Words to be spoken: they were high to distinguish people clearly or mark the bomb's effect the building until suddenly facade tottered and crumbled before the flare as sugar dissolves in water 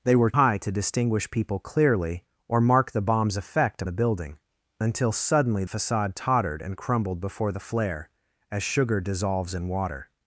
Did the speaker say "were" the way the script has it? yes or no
yes